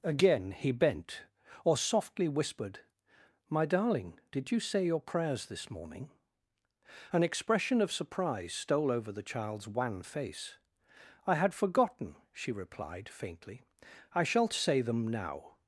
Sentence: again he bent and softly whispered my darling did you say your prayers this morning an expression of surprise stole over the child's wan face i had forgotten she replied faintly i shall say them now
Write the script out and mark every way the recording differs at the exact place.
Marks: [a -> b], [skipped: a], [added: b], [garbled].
again he bent [and -> or] softly whispered my darling did you say your prayers this morning an expression of surprise stole over the child's wan face i had forgotten she replied faintly i shall say them now